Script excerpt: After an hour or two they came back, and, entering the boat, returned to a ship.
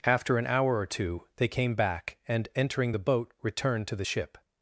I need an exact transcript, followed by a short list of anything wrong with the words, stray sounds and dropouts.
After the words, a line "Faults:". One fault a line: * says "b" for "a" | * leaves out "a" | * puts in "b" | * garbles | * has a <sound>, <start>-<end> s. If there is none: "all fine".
After an hour or two they came back, and, entering the boat, returned to the ship.
Faults:
* says "the" for "a"